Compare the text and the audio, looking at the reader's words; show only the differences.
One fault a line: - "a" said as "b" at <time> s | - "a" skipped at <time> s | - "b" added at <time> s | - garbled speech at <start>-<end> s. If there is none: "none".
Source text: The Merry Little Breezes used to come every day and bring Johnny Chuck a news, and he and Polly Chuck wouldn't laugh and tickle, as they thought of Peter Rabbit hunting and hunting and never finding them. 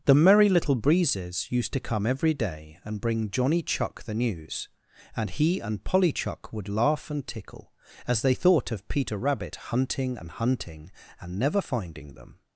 - "a" said as "the" at 4.0 s
- "wouldn't" said as "would" at 6.5 s